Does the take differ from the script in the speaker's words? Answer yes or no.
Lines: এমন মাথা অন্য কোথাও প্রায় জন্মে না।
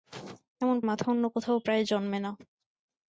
no